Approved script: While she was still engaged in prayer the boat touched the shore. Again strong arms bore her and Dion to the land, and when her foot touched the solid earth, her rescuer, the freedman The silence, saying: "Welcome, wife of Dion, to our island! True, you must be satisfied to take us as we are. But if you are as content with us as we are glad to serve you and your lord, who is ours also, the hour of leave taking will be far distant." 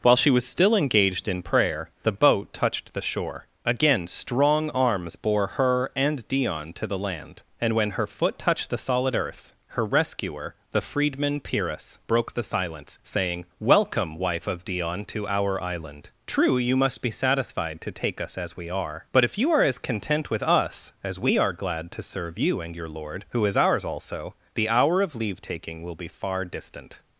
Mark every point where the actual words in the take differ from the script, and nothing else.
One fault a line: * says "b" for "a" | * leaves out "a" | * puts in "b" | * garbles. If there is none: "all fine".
* puts in "Pyrrhus broke"